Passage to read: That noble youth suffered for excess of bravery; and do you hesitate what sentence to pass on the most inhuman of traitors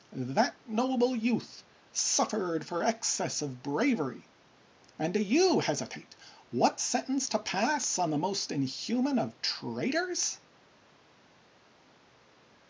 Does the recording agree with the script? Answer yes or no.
yes